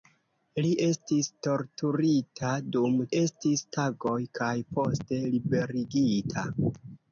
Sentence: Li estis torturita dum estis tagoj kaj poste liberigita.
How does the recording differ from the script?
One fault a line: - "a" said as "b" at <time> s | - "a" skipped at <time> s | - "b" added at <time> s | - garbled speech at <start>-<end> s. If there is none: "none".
none